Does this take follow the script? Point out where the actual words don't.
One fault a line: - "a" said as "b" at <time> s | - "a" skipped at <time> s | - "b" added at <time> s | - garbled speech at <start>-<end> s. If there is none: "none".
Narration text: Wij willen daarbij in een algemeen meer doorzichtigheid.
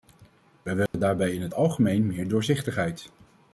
- "een" said as "het" at 1.4 s